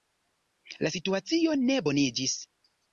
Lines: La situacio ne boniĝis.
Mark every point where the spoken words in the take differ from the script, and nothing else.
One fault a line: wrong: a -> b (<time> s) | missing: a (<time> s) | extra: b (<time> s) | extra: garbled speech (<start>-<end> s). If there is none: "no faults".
no faults